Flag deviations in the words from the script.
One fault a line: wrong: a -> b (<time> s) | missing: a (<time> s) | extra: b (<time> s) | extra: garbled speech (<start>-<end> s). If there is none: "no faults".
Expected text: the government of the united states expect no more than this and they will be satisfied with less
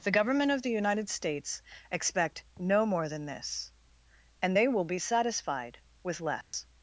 no faults